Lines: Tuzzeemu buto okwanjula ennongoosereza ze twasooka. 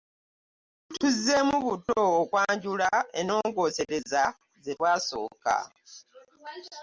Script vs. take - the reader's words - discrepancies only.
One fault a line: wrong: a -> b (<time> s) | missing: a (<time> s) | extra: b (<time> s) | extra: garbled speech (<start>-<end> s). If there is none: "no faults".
no faults